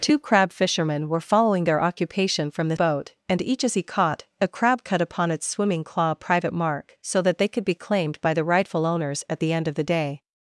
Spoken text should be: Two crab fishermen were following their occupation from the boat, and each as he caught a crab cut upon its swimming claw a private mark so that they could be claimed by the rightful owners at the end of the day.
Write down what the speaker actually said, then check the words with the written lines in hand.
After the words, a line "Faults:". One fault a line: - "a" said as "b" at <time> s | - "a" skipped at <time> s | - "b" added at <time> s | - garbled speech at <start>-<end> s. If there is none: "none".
Two crab fishermen were following their occupation from the boat, and each as he caught a crab cut upon its swimming claw a private mark so that they could be claimed by the rightful owners at the end of the day.
Faults:
none